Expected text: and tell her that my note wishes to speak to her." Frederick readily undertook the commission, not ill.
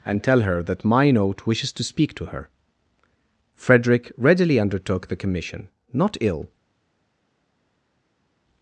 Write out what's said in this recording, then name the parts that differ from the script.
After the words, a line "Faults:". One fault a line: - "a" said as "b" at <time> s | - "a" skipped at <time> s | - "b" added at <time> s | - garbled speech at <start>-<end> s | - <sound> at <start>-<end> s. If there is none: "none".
and tell her that my note wishes to speak to her." Frederick readily undertook the commission, not ill.
Faults:
none